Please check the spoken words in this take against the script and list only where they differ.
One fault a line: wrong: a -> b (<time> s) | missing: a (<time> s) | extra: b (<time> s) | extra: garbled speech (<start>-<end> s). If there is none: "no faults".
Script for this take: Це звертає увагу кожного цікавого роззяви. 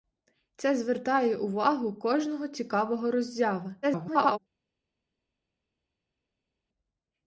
extra: garbled speech (3.8-4.4 s)